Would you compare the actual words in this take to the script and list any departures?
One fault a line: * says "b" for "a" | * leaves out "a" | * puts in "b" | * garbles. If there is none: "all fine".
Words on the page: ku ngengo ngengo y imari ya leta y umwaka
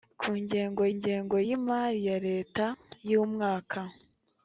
all fine